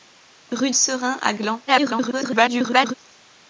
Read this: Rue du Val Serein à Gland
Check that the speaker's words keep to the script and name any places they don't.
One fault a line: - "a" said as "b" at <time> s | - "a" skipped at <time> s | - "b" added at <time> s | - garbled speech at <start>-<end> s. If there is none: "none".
- "du Val" skipped at 0.7 s
- garbled speech at 1.7-2.9 s